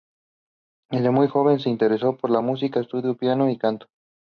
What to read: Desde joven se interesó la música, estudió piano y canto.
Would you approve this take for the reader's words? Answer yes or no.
no